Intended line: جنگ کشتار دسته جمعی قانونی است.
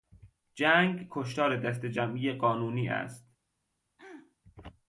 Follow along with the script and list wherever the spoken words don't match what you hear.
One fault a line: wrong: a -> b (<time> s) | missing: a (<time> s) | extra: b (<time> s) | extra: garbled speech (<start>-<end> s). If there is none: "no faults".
no faults